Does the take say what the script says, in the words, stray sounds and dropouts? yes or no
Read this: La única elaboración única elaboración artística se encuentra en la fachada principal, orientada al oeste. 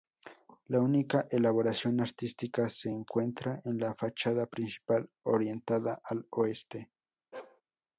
no